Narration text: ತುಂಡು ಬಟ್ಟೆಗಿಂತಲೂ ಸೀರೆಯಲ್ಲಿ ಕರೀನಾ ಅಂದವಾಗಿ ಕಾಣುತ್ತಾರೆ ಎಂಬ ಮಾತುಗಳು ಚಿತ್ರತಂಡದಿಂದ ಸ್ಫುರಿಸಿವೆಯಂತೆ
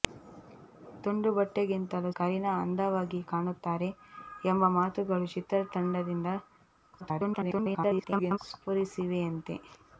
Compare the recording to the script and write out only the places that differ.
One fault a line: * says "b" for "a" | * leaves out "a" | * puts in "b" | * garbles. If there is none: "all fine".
* leaves out "ಸೀರೆಯಲ್ಲಿ"
* garbles